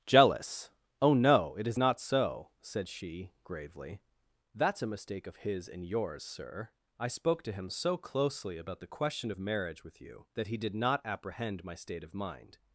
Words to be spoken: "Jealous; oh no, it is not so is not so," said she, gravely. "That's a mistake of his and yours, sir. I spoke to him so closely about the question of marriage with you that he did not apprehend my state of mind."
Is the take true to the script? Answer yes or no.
no